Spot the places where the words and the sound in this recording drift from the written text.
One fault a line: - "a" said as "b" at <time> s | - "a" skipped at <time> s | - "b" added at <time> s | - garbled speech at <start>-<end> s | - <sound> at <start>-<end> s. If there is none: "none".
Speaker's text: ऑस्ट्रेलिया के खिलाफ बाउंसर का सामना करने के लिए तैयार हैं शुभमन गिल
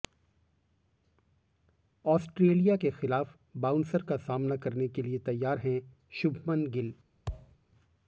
- thud at 7.3-7.6 s